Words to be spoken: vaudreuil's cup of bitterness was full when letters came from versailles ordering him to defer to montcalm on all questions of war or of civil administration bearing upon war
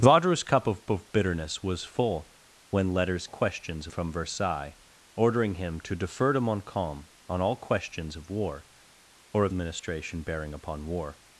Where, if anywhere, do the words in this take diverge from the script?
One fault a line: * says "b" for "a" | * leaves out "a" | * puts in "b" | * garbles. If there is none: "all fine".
* puts in "of"
* says "questions" for "came"
* leaves out "civil"